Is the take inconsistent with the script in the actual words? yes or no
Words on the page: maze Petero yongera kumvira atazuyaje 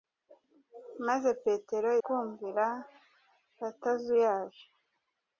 yes